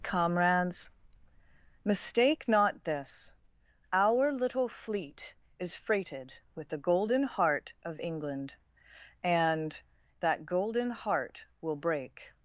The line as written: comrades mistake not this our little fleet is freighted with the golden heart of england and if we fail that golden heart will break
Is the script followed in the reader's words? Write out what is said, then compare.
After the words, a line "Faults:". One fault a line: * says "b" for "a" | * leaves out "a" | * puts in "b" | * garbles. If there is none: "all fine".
comrades mistake not this our little fleet is freighted with the golden heart of england and that golden heart will break
Faults:
* leaves out "if we fail"